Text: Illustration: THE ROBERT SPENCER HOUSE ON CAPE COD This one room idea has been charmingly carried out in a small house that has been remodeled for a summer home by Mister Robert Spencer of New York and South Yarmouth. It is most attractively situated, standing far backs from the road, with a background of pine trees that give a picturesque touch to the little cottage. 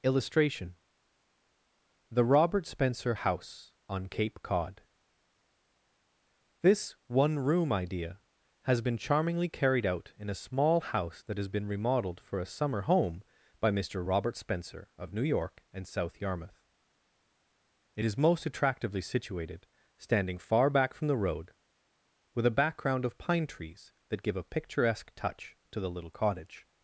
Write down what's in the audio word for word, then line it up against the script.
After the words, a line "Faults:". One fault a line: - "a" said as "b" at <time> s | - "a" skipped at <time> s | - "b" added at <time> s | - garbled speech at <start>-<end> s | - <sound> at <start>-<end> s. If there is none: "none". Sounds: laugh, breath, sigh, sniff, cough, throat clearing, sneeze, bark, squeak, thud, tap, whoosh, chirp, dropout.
Illustration: THE ROBERT SPENCER HOUSE ON CAPE COD This one room idea has been charmingly carried out in a small house that has been remodeled for a summer home by Mister Robert Spencer of New York and South Yarmouth. It is most attractively situated, standing far back from the road, with a background of pine trees that give a picturesque touch to the little cottage.
Faults:
- "backs" said as "back" at 20.7 s